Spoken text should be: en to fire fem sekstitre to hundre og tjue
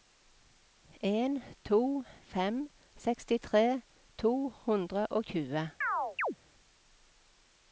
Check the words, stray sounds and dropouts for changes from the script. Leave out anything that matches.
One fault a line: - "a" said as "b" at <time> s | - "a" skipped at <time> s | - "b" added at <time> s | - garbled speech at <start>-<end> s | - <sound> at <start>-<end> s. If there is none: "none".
- "fire" skipped at 2.0 s
- chirp at 5.8-6.4 s